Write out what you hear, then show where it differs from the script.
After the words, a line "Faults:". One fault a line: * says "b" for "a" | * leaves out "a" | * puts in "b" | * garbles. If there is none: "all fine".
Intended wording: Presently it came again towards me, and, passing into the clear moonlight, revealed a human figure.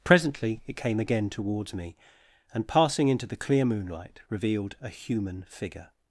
Presently it came again towards me, and, passing into the clear moonlight, revealed a human figure.
Faults:
all fine